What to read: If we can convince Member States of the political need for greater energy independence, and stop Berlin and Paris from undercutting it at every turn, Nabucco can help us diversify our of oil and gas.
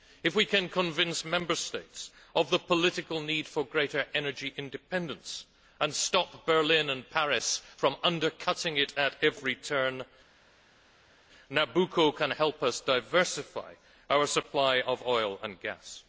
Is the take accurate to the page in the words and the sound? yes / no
no